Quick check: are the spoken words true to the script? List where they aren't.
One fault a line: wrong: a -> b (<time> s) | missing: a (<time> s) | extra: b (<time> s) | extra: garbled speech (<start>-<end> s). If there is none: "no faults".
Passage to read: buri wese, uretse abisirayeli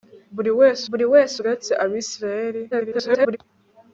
extra: buri wese (0.9 s)
extra: garbled speech (2.7-3.4 s)